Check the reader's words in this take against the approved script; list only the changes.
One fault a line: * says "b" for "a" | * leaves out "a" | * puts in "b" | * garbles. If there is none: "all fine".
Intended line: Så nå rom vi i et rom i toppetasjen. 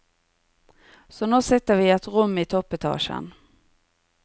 * says "sitter" for "rom"